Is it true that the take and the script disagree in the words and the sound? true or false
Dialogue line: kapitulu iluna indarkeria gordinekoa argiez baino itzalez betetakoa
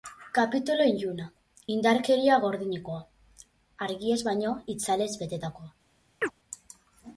true